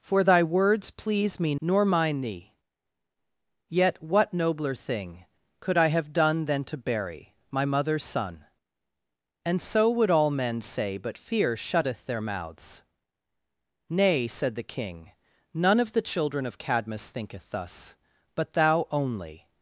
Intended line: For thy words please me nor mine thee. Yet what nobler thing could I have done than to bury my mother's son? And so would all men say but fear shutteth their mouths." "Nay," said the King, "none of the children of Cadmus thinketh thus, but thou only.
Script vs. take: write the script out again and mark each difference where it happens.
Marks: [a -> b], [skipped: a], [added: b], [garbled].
For thy words please me nor mine thee. Yet what nobler thing could I have done than to bury my mother's son? And so would all men say but fear shutteth their mouths." "Nay," said the King, "none of the children of Cadmus thinketh thus, but thou only.